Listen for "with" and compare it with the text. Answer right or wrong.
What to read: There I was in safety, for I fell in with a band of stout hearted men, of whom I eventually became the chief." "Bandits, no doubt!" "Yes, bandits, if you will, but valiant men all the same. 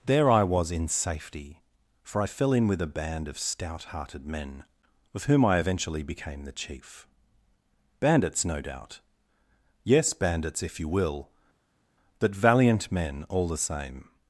right